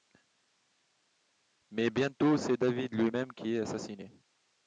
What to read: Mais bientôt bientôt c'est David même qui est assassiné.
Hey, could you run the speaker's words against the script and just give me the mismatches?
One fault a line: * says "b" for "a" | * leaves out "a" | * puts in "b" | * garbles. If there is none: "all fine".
* leaves out "bientôt"
* puts in "lui"